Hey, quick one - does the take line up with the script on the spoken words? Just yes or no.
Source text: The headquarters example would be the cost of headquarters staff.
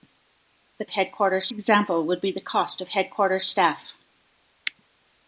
yes